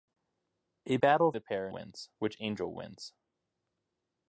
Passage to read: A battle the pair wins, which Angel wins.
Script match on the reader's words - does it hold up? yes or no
yes